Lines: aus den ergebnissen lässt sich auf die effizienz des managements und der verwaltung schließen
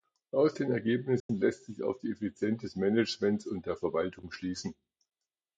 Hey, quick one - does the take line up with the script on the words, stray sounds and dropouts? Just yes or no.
no